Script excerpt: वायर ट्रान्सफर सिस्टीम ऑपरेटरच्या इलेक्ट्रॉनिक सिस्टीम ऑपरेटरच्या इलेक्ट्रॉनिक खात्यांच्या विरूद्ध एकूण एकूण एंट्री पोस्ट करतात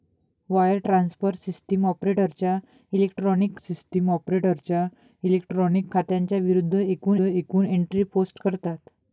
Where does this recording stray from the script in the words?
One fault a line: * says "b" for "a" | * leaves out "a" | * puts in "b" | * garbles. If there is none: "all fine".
all fine